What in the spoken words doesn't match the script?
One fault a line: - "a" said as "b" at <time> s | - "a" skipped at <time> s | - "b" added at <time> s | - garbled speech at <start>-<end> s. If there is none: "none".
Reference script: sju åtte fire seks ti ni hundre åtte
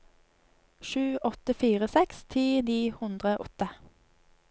none